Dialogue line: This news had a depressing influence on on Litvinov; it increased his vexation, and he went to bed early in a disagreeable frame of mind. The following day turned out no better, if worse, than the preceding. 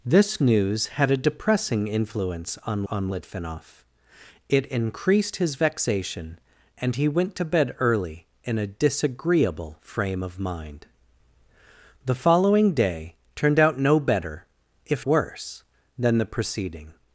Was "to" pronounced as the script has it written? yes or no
yes